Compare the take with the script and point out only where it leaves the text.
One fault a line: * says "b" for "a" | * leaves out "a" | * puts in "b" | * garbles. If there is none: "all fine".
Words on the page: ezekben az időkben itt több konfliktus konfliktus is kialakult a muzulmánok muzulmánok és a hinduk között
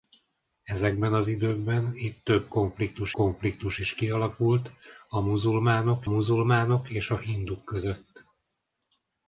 all fine